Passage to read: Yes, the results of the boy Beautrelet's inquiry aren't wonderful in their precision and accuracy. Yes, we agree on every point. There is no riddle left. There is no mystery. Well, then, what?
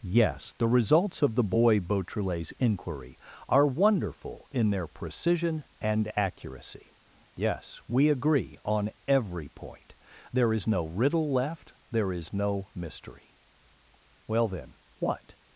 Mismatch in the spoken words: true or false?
true